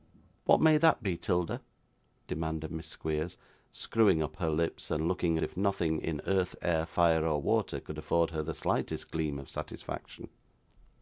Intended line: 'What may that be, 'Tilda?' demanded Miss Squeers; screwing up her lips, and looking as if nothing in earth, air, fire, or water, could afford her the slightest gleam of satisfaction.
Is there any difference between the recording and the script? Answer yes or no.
yes